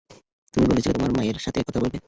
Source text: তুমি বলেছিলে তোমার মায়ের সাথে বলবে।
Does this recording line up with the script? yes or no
no